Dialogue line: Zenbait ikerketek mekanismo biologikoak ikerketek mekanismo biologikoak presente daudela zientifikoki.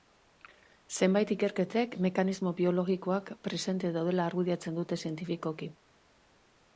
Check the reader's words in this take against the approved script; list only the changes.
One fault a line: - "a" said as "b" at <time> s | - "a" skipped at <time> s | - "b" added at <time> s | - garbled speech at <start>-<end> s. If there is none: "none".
- "ikerketek mekanismo biologikoak presente daudela" said as "presente daudela argudiatzen dute" at 3.5 s